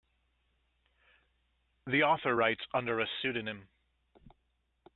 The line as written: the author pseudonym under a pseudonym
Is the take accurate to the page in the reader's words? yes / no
no